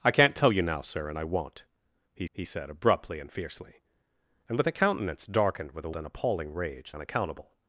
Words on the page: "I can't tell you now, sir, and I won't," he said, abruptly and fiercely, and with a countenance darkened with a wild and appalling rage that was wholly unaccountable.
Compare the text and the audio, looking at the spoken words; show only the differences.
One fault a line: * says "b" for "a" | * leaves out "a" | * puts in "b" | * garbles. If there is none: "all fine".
* puts in "he"
* leaves out "wild"
* leaves out "that was wholly"